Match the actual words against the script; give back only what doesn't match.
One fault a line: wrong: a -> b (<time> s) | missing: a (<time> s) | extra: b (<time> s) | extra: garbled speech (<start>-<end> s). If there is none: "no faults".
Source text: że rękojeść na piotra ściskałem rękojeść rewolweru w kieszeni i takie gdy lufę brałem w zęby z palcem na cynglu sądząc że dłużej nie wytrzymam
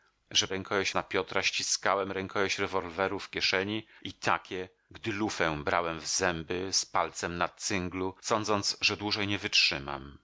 no faults